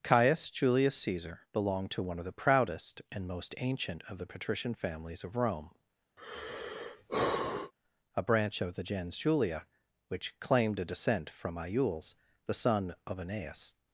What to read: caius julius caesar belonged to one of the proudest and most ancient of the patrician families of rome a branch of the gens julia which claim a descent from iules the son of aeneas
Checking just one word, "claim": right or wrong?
wrong